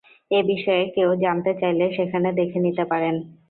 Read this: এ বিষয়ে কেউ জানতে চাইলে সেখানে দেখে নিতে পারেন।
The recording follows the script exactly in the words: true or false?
true